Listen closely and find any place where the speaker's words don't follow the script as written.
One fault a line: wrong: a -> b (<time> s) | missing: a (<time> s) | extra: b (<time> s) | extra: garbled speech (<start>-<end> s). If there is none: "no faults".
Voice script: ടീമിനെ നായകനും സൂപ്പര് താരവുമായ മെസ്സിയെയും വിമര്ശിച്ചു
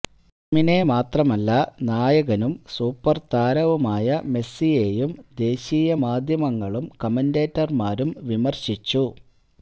extra: മാത്രമല്ല (0.9 s)
extra: ദേശീയ മാധ്യമങ്ങളും കമന്റേറ്റര്മാരും (5.4 s)